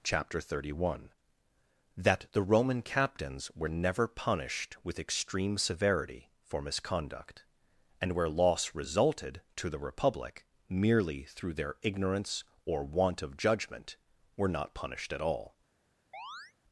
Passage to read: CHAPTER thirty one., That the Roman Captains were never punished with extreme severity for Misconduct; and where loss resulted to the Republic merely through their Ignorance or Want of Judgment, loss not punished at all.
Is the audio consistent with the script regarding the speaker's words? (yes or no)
no